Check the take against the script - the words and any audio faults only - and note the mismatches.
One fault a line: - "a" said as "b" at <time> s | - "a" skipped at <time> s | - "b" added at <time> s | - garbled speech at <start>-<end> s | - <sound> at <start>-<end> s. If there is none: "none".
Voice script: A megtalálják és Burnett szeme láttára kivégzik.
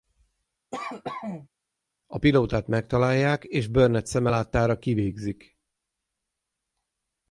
- cough at 0.7-1.5 s
- "pilótát" added at 2.2 s